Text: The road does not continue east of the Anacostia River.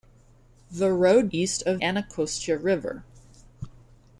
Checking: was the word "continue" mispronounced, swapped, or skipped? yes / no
yes